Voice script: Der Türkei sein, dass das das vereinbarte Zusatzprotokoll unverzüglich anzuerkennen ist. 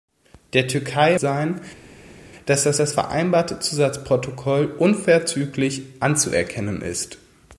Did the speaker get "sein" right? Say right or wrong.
right